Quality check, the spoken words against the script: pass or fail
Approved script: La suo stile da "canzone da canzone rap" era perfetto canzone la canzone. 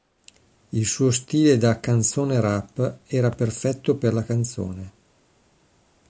fail